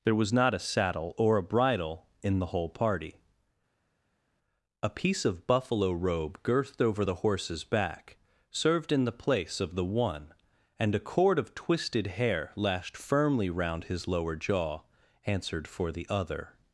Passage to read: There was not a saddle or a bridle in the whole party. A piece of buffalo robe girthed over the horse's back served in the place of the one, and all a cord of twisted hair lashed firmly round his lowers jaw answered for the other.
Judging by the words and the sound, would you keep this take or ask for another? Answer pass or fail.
fail